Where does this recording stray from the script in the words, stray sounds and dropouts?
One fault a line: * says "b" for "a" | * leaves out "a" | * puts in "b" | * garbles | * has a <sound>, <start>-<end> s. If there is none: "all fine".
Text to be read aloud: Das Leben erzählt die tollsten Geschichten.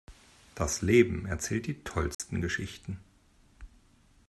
* has a dropout, 2.1-2.2 s